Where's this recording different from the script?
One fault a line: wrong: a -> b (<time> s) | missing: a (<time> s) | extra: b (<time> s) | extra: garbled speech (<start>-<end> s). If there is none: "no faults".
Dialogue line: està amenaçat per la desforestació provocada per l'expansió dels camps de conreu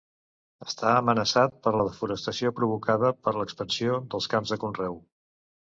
no faults